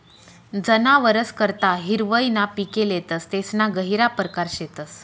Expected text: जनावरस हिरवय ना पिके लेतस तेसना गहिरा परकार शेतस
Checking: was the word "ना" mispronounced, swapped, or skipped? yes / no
no